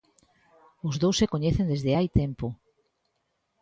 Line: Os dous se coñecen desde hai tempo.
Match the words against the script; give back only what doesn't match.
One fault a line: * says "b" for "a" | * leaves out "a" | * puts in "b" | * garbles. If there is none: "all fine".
all fine